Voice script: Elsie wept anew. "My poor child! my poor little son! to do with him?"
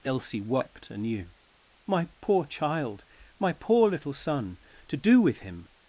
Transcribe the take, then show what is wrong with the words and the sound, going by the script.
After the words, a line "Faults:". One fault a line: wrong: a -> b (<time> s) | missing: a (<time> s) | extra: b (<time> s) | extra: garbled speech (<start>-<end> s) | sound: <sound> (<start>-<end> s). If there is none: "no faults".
Elsie wept anew. "My poor child! my poor little son! to do with him?"
Faults:
no faults